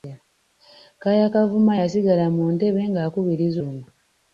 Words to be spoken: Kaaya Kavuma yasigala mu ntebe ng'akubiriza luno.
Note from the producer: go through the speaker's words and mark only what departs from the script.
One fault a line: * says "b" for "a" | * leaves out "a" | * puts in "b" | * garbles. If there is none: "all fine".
all fine